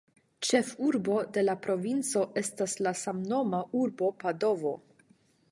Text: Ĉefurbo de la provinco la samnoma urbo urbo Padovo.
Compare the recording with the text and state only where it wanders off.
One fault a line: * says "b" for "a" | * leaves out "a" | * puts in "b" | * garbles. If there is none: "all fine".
* puts in "estas"
* leaves out "urbo"